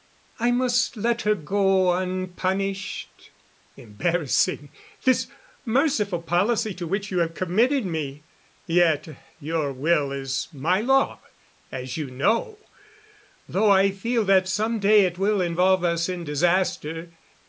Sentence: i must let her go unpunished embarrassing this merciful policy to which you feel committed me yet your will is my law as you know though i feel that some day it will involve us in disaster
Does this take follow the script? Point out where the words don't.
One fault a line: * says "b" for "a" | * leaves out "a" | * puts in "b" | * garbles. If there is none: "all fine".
* says "have" for "feel"